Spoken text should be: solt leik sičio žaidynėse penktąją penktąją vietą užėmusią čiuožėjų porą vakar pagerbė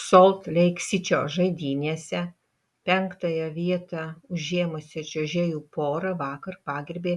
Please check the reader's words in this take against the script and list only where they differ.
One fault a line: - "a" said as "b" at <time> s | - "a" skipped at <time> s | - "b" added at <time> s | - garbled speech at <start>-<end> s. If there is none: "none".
- "penktąją" skipped at 3.4 s